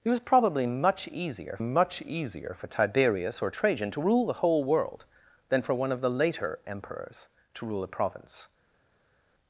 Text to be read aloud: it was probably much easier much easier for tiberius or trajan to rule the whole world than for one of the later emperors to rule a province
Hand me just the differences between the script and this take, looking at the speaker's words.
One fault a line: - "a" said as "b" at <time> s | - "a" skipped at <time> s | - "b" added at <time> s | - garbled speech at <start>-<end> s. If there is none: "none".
none